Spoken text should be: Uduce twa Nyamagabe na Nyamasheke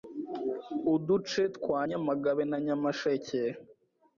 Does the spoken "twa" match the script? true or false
true